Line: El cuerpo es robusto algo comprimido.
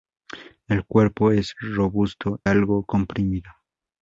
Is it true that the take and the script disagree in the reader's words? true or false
false